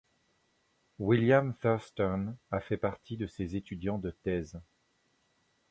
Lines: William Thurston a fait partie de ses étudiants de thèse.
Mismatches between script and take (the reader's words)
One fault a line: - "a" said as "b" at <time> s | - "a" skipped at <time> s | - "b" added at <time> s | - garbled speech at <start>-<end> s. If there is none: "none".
none